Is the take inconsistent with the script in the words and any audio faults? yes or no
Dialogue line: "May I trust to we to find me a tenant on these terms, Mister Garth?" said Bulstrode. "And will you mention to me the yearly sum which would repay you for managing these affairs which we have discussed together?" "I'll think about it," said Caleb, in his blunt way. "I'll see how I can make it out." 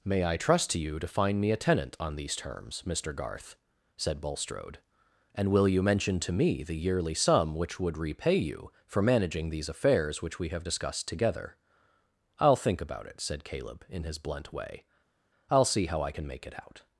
yes